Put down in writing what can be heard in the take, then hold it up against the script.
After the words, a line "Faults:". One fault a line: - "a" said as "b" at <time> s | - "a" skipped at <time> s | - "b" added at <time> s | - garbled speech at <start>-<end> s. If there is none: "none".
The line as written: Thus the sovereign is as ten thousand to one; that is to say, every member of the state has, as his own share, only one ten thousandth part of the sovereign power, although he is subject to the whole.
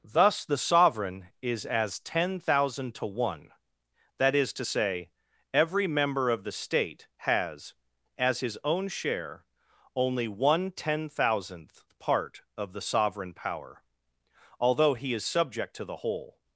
Thus the sovereign is as ten thousand to one; that is to say, every member of the state has, as his own share, only one ten thousandth part of the sovereign power, although he is subject to the whole.
Faults:
none